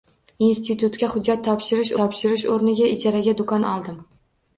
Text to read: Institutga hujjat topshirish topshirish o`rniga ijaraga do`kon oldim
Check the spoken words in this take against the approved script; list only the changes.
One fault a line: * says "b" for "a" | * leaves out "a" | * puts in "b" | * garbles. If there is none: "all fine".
all fine